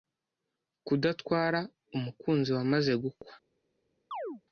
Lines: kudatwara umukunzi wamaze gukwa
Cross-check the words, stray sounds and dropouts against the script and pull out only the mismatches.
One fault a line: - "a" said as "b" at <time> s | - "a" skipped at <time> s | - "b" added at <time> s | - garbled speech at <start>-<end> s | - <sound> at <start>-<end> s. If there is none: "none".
- chirp at 4.1-4.4 s